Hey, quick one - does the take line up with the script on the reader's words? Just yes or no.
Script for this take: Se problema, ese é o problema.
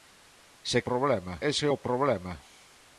yes